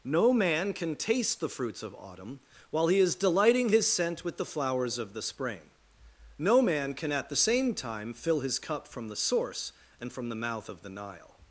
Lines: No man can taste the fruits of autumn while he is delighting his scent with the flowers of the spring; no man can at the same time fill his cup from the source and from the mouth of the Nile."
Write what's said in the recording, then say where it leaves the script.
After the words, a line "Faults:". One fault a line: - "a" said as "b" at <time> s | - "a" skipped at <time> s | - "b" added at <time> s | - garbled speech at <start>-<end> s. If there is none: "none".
No man can taste the fruits of autumn while he is delighting his scent with the flowers of the spring; no man can at the same time fill his cup from the source and from the mouth of the Nile."
Faults:
none